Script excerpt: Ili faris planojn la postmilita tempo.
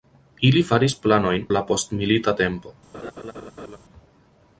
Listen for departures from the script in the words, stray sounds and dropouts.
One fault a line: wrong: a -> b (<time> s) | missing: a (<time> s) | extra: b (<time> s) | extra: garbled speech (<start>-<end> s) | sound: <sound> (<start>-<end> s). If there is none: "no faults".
sound: laugh (2.9-3.8 s)